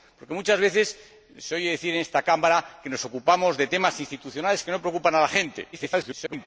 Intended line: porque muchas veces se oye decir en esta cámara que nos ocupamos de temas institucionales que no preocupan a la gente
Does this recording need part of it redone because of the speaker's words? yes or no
yes